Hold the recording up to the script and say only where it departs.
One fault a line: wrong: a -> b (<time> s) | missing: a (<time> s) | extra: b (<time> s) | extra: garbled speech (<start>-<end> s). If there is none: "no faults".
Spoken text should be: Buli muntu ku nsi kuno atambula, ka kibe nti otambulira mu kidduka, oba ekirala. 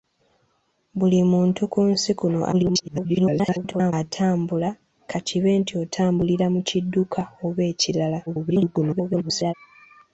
extra: garbled speech (2.5-3.9 s)
extra: garbled speech (8.3-9.5 s)